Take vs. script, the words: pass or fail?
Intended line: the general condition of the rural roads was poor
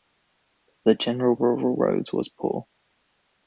fail